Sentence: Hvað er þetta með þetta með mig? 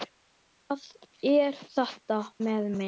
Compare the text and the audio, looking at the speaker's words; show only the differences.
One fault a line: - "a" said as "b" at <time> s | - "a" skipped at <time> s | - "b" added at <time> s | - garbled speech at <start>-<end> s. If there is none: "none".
- "þetta með" skipped at 2.7 s